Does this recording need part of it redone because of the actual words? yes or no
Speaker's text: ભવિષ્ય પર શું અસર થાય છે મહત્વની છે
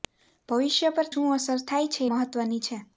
no